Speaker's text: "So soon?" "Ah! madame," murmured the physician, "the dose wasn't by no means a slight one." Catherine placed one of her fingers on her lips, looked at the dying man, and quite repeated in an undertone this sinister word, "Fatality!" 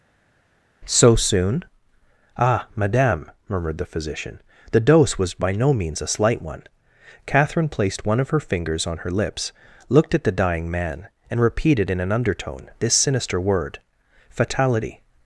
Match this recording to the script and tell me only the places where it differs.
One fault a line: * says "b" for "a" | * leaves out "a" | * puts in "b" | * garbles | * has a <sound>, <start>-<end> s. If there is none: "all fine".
* says "was" for "wasn't"
* leaves out "quite"